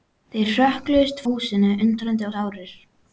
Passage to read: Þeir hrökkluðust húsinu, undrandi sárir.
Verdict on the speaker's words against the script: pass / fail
pass